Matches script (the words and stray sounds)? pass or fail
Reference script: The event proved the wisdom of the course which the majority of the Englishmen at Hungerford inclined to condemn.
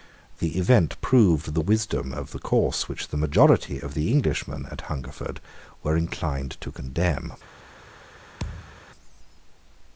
fail